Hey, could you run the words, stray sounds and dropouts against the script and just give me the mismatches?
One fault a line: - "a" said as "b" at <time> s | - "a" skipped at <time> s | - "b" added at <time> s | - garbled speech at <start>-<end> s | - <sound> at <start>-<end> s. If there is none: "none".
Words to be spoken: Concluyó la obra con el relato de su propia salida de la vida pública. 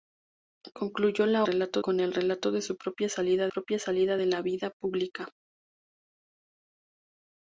- "obra" said as "relato" at 1.4 s
- "propia salida" added at 3.5 s